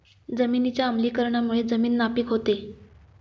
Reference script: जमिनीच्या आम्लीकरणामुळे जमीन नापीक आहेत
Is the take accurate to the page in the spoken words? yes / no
no